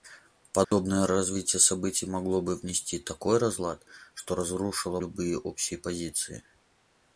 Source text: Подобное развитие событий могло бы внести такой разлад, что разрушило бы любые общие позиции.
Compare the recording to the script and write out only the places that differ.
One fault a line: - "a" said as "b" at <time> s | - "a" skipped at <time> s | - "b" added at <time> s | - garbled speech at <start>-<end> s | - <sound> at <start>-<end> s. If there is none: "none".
- dropout at 0.6-0.7 s
- "бы" skipped at 5.0 s